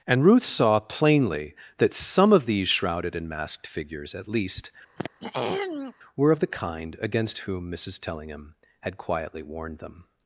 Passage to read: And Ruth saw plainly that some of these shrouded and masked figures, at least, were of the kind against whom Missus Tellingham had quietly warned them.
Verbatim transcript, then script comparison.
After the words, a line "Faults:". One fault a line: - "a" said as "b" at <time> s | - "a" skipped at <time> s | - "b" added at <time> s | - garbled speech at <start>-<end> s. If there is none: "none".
And Ruth saw plainly that some of these shrouded and masked figures, at least, were of the kind against whom Missus Tellingham had quietly warned them.
Faults:
none